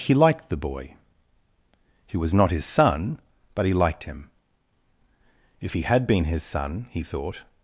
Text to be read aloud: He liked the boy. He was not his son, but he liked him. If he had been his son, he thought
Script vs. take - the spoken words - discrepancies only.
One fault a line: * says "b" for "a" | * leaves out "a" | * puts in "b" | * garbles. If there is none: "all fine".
all fine